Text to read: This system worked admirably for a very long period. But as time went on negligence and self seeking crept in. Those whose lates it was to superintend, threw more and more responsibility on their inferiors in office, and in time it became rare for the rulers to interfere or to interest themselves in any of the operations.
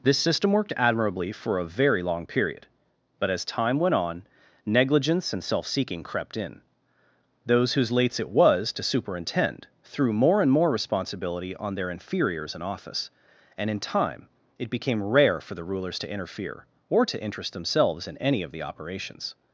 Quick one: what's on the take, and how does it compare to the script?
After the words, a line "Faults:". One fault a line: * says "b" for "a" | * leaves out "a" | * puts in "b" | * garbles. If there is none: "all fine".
This system worked admirably for a very long period. But as time went on negligence and self seeking crept in. Those whose lates it was to superintend, threw more and more responsibility on their inferiors in office, and in time it became rare for the rulers to interfere or to interest themselves in any of the operations.
Faults:
all fine